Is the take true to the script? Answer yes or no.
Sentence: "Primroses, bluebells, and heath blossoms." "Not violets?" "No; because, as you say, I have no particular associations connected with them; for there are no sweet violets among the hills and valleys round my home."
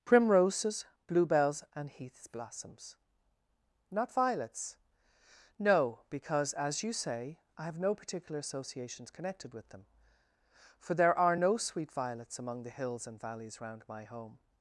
no